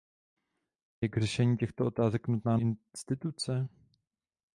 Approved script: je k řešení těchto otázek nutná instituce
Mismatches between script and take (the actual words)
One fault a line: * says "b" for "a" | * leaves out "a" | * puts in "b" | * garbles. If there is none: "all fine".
all fine